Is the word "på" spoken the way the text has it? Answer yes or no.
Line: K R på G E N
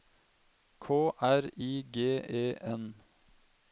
no